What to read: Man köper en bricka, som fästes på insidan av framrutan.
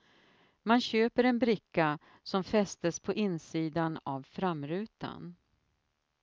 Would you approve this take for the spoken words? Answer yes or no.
yes